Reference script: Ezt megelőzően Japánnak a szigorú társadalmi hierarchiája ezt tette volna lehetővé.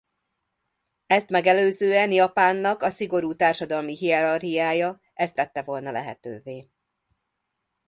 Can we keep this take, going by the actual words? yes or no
yes